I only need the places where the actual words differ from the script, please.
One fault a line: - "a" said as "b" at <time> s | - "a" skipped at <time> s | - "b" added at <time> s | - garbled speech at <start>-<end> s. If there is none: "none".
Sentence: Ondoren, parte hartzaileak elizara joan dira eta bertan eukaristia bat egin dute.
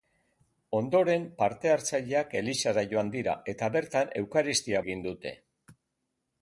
- "bat" skipped at 4.8 s